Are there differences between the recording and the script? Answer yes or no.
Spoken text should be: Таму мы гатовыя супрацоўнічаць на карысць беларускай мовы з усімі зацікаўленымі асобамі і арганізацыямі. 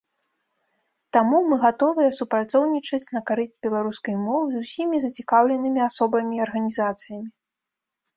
no